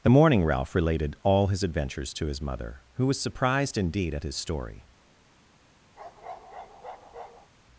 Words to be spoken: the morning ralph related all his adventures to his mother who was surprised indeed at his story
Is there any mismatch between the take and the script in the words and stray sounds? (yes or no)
yes